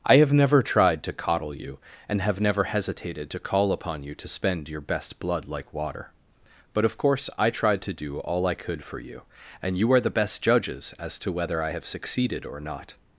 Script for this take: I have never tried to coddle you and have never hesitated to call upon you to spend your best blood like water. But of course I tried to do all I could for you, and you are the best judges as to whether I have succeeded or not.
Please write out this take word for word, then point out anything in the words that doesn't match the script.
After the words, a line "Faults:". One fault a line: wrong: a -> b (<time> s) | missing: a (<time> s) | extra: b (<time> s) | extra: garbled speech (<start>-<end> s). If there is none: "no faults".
I have never tried to coddle you and have never hesitated to call upon you to spend your best blood like water. But of course I tried to do all I could for you, and you are the best judges as to whether I have succeeded or not.
Faults:
no faults